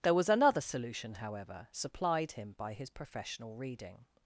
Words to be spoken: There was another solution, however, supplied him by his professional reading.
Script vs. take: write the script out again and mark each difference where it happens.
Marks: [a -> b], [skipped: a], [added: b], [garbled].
There was another solution, however, supplied him by his professional reading.